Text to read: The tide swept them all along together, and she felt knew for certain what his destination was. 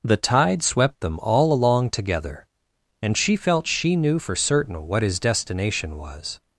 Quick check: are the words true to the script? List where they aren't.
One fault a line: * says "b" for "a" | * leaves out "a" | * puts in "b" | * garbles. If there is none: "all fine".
* puts in "she"